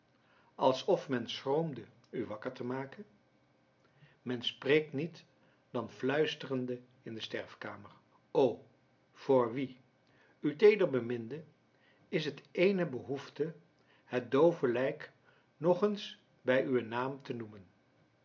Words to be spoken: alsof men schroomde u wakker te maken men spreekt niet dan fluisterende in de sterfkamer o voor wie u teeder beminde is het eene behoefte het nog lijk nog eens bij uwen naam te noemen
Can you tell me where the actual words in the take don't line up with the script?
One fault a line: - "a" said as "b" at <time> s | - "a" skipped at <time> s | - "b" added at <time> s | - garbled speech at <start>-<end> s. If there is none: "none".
- "nog" said as "doove" at 14.3 s